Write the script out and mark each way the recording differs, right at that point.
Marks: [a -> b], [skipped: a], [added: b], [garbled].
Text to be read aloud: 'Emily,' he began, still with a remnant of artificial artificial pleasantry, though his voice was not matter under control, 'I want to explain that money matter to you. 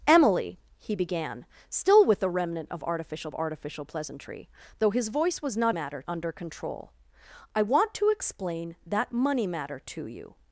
'Emily,' he began, still with a remnant of artificial artificial pleasantry, though his voice was not matter under control, 'I want to explain that money matter to you.